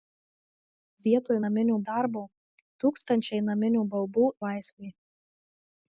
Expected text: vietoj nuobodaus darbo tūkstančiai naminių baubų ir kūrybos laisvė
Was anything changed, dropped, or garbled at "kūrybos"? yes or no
yes